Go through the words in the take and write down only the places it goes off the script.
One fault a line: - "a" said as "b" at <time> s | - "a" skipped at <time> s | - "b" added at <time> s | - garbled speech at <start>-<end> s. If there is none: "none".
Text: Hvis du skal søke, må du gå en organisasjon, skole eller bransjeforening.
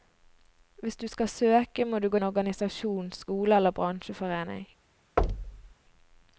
none